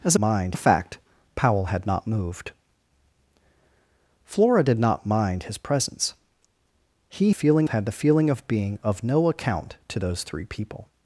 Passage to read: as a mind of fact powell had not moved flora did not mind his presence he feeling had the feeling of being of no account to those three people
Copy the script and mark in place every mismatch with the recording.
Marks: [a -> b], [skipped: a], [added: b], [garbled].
as a mind of fact powell had not moved flora did not mind his presence he feeling had the feeling of being of no account to those three people